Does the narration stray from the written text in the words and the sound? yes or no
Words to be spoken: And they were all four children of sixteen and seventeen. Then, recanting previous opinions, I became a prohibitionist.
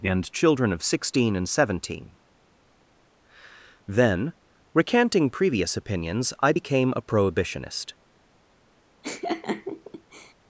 yes